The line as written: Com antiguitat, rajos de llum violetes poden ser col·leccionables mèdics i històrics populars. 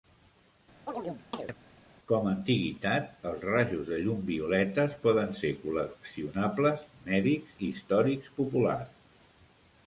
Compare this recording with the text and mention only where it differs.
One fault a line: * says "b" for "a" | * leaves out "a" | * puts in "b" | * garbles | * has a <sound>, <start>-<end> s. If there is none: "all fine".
* has a chirp, 0.9-1.6 s
* puts in "els"